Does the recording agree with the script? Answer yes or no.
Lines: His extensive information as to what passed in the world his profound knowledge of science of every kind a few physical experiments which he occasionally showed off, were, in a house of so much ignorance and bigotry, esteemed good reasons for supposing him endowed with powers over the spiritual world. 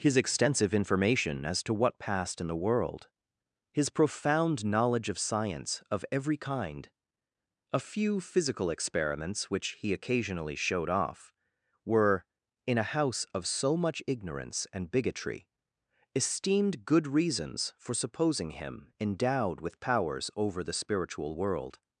yes